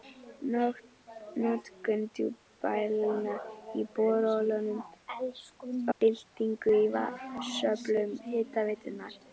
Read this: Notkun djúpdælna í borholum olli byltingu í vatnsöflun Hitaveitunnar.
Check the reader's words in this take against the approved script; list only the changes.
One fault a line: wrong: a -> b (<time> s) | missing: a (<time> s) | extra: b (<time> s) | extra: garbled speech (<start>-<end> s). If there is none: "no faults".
missing: olli (4.7 s)